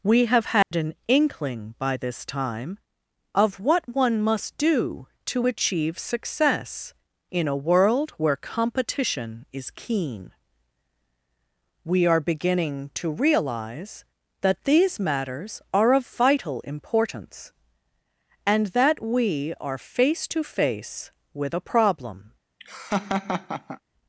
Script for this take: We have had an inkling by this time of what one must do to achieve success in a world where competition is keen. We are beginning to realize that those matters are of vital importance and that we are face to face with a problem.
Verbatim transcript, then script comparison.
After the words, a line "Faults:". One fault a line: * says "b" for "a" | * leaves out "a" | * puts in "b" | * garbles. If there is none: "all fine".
We have had an inkling by this time of what one must do to achieve success in a world where competition is keen. We are beginning to realize that these matters are of vital importance and that we are face to face with a problem.
Faults:
* says "these" for "those"